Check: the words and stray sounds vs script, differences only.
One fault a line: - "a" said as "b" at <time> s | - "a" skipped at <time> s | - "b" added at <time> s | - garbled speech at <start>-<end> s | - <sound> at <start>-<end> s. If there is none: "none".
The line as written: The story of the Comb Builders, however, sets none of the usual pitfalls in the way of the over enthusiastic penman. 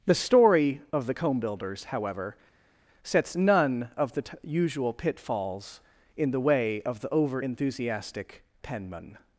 - "t" added at 4.2 s